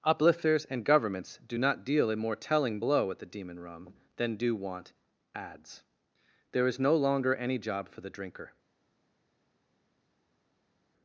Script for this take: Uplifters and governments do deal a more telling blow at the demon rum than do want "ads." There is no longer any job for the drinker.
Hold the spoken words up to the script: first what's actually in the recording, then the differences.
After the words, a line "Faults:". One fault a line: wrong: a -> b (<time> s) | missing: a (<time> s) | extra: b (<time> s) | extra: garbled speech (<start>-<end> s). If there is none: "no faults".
Uplifters and governments do not deal a more telling blow at the demon rum than do want "ads." There is no longer any job for the drinker.
Faults:
extra: not (1.6 s)